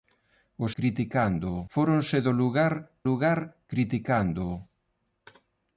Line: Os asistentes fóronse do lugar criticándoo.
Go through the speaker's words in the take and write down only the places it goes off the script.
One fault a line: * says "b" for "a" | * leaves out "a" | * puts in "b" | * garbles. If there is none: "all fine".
* says "criticándoo" for "asistentes"
* puts in "lugar"